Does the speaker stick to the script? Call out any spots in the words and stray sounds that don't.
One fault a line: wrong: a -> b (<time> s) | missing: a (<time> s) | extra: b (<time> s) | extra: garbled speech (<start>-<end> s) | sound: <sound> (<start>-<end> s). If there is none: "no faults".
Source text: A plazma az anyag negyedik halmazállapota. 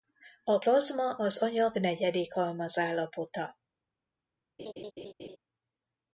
sound: laugh (4.6-5.4 s)